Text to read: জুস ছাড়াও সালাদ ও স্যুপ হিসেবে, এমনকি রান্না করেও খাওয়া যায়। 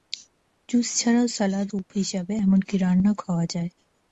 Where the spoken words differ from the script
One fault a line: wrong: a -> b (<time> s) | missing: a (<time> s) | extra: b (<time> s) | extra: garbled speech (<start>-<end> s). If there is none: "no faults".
missing: ও (1.7 s)
missing: করেও (3.1 s)